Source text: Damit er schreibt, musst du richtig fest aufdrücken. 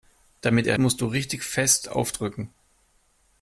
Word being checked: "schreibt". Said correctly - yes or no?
no